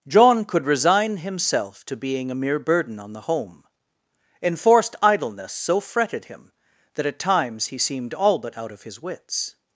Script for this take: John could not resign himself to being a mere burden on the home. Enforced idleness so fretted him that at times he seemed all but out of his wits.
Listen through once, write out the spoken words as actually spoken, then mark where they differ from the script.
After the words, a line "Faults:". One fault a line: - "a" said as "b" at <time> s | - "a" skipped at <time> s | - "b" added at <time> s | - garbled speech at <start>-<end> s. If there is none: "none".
John could resign himself to being a mere burden on the home. Enforced idleness so fretted him that at times he seemed all but out of his wits.
Faults:
- "not" skipped at 0.7 s